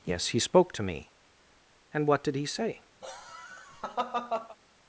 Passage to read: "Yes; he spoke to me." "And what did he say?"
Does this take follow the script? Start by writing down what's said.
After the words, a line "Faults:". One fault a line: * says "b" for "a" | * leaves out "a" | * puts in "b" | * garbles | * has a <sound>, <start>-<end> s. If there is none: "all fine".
"Yes; he spoke to me." "And what did he say?"
Faults:
* has a laugh, 3.0-4.6 s